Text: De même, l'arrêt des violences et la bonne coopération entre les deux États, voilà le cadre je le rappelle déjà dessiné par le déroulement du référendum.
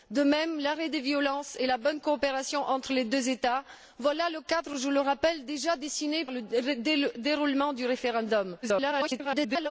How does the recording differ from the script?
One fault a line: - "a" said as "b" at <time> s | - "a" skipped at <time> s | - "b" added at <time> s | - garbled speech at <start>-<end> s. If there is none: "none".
- "par" skipped at 6.2 s
- garbled speech at 8.6-9.7 s